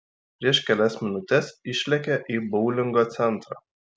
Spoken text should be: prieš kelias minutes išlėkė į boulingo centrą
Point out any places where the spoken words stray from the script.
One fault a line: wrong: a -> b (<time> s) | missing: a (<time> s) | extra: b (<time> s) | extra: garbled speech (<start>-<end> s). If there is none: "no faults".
no faults